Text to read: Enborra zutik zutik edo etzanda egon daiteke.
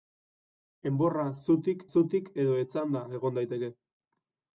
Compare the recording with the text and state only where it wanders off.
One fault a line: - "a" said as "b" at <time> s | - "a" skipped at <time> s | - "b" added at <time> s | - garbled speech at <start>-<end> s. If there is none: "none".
none